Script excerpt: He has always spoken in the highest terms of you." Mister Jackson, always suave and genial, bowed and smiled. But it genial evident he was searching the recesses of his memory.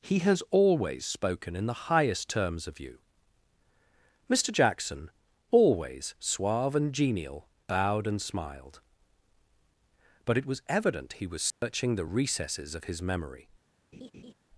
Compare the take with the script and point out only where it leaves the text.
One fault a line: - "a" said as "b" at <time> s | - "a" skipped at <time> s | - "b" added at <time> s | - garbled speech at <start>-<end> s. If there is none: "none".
- "genial" said as "was" at 10.5 s